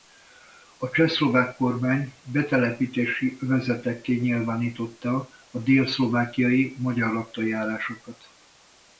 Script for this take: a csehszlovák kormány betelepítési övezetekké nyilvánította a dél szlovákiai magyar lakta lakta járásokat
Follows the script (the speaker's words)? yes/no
no